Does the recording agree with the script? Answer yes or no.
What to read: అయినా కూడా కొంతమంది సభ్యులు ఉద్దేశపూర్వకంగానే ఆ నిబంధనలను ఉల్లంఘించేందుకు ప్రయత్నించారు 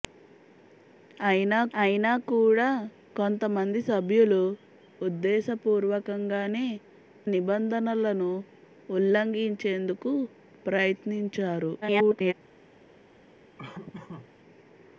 no